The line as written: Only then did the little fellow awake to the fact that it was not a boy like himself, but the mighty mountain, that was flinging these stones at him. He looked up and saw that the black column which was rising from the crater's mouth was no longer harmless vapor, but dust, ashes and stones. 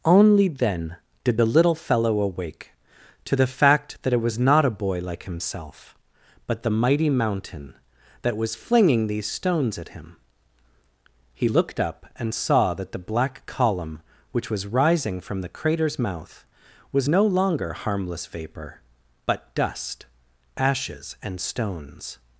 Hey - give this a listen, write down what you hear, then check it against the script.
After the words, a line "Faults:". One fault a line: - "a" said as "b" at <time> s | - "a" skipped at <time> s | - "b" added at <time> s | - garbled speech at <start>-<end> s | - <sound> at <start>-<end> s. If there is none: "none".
Only then did the little fellow awake to the fact that it was not a boy like himself, but the mighty mountain, that was flinging these stones at him. He looked up and saw that the black column which was rising from the crater's mouth was no longer harmless vapor, but dust, ashes and stones.
Faults:
none